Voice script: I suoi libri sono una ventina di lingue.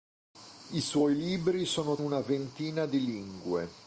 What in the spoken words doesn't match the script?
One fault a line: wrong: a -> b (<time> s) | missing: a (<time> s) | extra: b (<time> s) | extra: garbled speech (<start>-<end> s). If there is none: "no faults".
no faults